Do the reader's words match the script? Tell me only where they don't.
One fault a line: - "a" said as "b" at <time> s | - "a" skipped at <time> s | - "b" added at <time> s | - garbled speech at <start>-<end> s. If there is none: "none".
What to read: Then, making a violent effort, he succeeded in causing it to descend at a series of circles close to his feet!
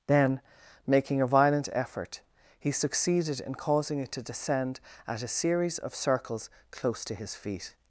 none